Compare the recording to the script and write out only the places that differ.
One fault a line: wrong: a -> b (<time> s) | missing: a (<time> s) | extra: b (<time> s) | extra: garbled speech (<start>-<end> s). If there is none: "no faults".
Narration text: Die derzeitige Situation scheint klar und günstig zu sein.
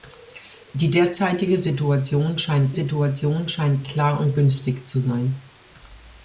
extra: Situation scheint (2.7 s)